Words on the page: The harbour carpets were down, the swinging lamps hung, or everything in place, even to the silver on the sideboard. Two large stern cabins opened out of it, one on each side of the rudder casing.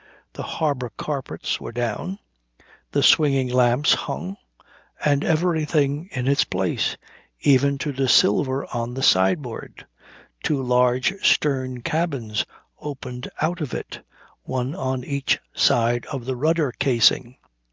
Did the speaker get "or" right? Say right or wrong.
wrong